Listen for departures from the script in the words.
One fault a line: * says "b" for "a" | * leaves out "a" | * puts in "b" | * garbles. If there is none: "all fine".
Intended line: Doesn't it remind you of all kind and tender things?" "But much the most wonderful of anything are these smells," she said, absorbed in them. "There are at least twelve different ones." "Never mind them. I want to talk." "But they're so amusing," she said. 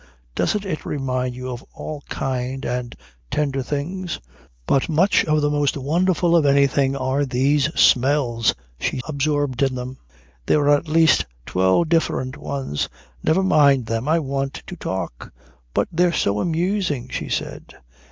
* leaves out "said"